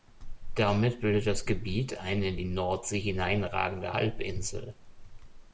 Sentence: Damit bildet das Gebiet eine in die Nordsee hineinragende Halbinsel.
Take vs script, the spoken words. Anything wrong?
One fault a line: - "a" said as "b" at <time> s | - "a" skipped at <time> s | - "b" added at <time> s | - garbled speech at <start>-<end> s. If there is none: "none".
none